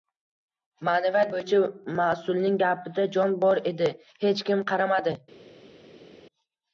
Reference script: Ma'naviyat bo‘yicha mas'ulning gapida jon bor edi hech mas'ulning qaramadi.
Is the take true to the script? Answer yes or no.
no